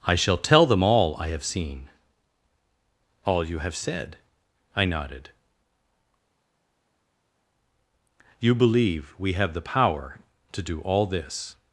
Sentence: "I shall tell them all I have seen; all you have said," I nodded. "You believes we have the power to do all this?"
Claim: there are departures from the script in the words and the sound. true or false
true